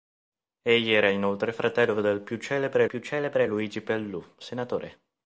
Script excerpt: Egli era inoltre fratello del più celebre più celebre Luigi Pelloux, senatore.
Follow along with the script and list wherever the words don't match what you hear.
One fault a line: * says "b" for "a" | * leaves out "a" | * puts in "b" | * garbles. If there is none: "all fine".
all fine